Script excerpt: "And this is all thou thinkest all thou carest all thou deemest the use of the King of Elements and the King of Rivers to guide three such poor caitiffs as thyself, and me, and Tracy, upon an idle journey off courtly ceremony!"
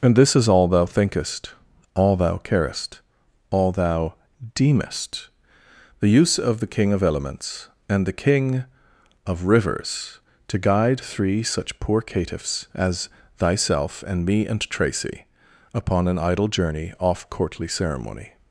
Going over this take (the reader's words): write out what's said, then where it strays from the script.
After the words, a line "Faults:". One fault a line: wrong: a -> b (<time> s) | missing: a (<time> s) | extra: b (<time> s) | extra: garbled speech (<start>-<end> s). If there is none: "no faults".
"And this is all thou thinkest all thou carest all thou deemest the use of the King of Elements and the King of Rivers to guide three such poor caitiffs as thyself, and me, and Tracy, upon an idle journey off courtly ceremony!"
Faults:
no faults